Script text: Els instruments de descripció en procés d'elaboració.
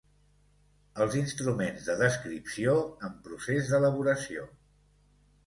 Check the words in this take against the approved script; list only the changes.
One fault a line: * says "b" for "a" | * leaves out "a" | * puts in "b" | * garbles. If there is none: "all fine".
all fine